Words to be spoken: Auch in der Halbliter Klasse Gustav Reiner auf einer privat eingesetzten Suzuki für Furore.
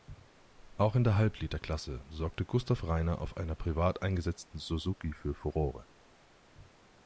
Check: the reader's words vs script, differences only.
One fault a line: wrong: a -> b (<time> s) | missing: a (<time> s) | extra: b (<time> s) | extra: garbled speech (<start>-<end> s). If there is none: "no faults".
extra: sorgte (2.1 s)